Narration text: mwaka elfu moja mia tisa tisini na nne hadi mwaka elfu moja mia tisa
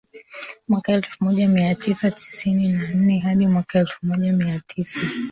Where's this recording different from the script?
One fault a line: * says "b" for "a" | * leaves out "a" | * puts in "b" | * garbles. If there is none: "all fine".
all fine